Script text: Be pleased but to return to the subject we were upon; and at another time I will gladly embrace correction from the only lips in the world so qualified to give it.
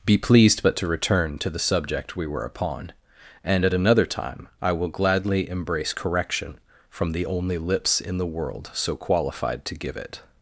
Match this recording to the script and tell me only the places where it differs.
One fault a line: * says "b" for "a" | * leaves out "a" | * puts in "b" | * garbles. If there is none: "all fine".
all fine